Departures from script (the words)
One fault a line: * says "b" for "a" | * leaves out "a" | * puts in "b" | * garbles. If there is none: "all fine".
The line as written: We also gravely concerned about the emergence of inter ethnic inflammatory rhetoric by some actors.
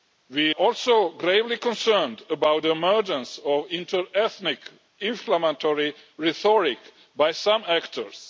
all fine